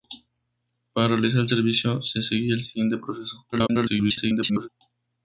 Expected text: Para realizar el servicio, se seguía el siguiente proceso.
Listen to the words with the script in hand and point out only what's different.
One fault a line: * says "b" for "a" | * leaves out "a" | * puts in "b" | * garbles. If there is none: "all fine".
* garbles